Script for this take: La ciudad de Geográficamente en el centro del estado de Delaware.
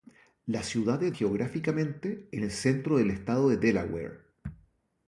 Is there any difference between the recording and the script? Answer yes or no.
no